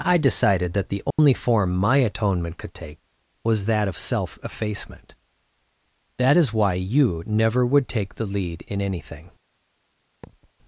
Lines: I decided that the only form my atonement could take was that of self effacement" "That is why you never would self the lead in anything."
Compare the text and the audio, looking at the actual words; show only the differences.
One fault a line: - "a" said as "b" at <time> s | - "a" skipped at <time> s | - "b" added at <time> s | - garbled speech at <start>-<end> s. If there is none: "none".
- "self" said as "take" at 7.9 s